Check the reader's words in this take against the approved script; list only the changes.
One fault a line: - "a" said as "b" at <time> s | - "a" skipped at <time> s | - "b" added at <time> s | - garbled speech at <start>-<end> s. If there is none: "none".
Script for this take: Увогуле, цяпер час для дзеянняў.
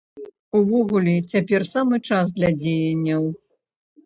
- "самы" added at 1.7 s